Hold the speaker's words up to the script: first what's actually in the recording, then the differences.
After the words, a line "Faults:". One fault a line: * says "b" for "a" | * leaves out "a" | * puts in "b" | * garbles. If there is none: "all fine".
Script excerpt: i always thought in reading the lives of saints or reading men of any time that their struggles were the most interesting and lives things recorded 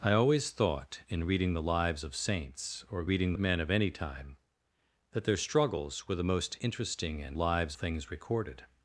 i always thought in reading the lives of saints or reading men of any time that their struggles were the most interesting and lives things recorded
Faults:
all fine